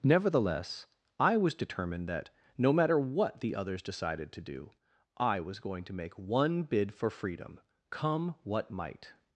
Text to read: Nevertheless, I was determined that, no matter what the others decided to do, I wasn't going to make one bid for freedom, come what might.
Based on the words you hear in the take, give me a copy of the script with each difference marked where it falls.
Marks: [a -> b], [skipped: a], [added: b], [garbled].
Nevertheless, I was determined that, no matter what the others decided to do, I [wasn't -> was] going to make one bid for freedom, come what might.